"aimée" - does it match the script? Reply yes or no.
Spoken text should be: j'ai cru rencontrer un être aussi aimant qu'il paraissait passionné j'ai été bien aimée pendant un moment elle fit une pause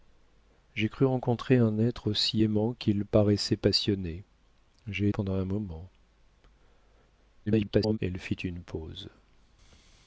no